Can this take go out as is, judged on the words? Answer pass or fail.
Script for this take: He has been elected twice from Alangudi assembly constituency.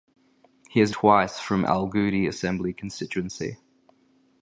fail